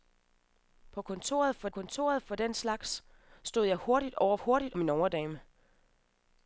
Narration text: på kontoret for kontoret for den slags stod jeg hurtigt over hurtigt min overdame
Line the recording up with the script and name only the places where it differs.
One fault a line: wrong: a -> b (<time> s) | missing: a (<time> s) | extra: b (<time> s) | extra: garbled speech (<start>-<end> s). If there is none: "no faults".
no faults